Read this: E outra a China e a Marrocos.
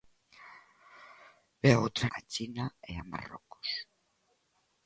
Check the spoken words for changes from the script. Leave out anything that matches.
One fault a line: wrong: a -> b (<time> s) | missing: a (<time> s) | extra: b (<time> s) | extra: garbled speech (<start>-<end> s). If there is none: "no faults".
no faults